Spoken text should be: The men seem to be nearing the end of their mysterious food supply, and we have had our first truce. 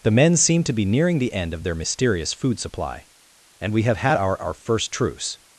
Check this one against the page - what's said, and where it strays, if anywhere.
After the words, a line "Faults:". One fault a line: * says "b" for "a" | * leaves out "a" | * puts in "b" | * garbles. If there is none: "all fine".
The men seem to be nearing the end of their mysterious food supply, and we have had our our first truce.
Faults:
* puts in "our"